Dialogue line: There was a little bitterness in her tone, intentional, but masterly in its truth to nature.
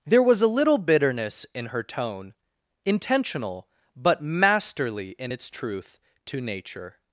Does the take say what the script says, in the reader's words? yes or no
yes